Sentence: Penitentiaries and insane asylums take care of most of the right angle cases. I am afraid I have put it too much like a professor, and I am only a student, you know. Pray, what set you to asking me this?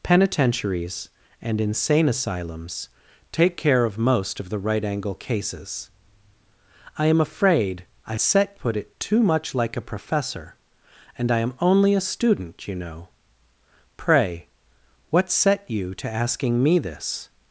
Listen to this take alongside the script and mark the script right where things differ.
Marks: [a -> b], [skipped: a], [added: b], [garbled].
Penitentiaries and insane asylums take care of most of the right angle cases. I am afraid I [have -> set] put it too much like a professor, and I am only a student, you know. Pray, what set you to asking me this?